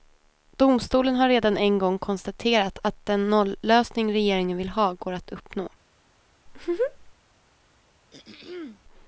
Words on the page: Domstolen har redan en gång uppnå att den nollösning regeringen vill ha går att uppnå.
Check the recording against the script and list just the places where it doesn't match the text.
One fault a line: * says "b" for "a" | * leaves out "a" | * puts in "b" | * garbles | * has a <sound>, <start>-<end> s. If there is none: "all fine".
* says "konstaterat" for "uppnå"
* has a laugh, 6.5-7.1 s
* has a throat clearing, 8.1-8.8 s